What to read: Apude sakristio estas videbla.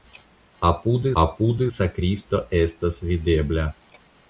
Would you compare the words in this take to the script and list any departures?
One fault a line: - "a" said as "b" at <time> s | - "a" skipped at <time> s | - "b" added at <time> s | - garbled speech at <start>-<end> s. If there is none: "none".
- "apude" added at 1.2 s